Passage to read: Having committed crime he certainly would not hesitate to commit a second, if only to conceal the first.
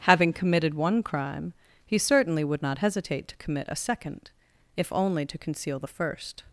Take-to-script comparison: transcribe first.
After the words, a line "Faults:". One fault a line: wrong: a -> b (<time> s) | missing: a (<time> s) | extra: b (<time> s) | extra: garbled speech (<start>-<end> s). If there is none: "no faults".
Having committed one crime he certainly would not hesitate to commit a second, if only to conceal the first.
Faults:
extra: one (0.7 s)